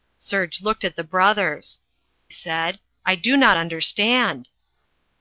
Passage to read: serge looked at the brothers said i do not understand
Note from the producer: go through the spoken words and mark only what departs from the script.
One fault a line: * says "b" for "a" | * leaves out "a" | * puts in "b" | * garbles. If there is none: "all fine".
all fine